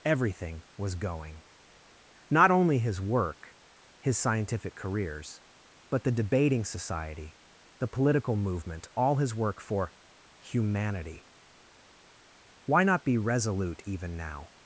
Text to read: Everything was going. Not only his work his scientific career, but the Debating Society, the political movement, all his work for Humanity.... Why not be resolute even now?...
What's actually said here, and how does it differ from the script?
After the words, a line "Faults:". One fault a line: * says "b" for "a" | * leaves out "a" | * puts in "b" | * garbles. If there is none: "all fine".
Everything was going. Not only his work his scientific careers, but the Debating Society, the political movement, all his work for Humanity.... Why not be resolute even now?...
Faults:
* says "careers" for "career"